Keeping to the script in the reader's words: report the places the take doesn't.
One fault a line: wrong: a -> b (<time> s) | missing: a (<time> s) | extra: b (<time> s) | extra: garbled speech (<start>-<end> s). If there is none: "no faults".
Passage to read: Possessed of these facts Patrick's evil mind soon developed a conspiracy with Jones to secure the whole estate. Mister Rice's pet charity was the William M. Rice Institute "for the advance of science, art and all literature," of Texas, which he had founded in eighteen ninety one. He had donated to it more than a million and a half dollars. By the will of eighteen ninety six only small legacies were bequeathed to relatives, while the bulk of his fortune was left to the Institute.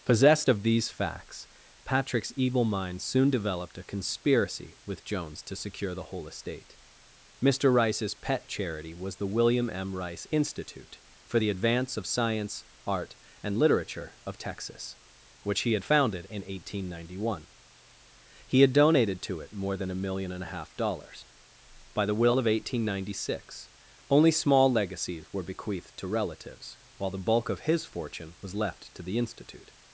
missing: all (13.6 s)